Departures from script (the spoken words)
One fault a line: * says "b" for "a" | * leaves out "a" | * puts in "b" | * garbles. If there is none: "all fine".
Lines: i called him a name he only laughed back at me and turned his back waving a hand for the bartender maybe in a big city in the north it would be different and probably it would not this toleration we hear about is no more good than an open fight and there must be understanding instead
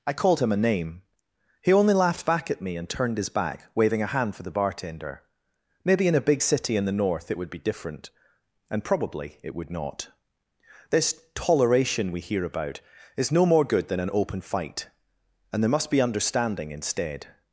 all fine